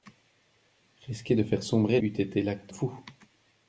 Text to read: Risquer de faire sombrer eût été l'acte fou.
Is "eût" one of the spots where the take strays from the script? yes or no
no